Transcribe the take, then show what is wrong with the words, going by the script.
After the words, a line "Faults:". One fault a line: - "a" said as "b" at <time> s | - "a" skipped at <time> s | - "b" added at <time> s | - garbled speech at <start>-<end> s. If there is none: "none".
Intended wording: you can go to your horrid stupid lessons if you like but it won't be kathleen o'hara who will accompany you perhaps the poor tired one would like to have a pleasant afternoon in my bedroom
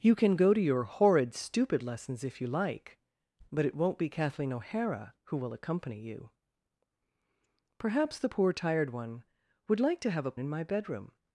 you can go to your horrid stupid lessons if you like but it won't be kathleen o'hara who will accompany you perhaps the poor tired one would like to have a in my bedroom
Faults:
- "pleasant afternoon" skipped at 10.4 s